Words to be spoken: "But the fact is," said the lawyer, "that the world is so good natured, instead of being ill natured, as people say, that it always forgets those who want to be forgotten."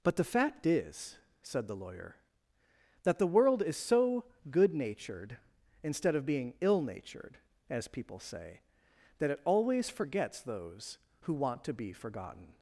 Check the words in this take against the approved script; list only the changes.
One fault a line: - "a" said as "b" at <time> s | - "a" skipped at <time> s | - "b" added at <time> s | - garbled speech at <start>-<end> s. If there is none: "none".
none